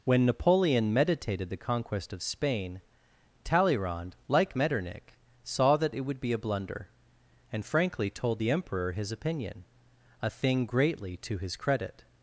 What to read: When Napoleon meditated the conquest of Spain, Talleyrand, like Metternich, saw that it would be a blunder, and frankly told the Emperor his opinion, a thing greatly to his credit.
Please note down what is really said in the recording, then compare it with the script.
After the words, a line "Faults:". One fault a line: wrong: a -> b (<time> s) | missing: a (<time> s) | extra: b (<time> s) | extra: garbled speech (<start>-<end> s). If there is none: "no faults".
When Napoleon meditated the conquest of Spain, Talleyrand, like Metternich, saw that it would be a blunder, and frankly told the Emperor his opinion, a thing greatly to his credit.
Faults:
no faults